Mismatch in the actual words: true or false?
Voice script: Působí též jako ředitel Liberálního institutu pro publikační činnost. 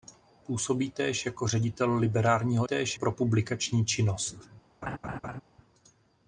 true